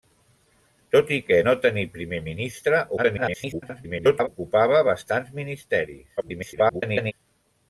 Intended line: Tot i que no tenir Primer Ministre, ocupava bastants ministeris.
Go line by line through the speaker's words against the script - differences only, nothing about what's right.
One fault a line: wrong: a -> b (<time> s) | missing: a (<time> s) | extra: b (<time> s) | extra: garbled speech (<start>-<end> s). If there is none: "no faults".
extra: garbled speech (3.0-4.3 s)
extra: garbled speech (6.2-7.1 s)